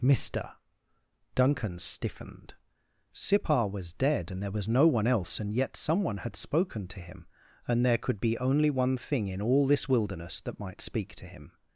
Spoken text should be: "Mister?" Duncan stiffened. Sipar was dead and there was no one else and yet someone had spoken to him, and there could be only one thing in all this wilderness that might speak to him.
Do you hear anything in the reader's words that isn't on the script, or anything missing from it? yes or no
no